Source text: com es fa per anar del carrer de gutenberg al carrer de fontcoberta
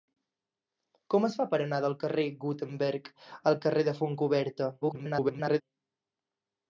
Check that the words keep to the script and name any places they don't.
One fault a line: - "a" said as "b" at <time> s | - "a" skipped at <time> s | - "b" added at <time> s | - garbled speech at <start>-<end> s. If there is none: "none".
- garbled speech at 4.8-5.6 s